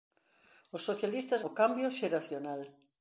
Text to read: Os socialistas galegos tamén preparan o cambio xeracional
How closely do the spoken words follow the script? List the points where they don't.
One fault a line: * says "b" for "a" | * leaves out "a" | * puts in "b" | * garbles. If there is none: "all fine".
* leaves out "galegos tamén preparan"